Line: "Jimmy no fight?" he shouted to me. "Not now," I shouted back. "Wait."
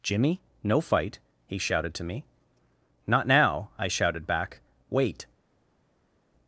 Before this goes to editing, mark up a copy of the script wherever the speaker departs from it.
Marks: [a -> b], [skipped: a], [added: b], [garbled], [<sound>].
"Jimmy no fight?" he shouted to me. "Not now," I shouted back. "Wait."